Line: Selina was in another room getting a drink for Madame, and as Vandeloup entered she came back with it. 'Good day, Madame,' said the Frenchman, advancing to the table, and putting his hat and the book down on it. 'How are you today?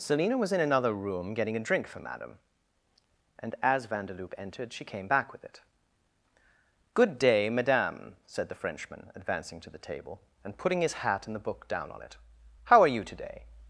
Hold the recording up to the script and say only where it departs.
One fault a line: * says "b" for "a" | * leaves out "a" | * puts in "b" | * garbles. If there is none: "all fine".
all fine